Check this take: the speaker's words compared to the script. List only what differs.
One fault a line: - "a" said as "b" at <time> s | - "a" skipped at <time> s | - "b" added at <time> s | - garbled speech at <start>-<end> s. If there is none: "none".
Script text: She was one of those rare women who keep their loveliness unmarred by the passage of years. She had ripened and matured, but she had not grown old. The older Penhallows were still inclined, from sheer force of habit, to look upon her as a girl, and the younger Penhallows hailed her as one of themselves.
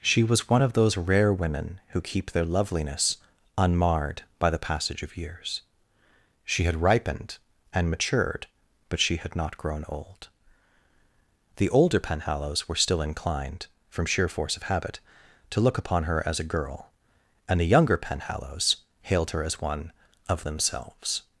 none